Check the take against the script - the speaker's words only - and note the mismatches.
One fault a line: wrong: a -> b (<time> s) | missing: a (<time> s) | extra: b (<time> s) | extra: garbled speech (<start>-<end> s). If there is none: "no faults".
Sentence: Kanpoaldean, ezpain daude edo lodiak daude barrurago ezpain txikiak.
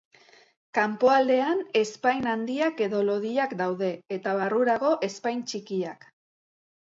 wrong: daude -> handiak (2.3 s)
extra: eta (4.2 s)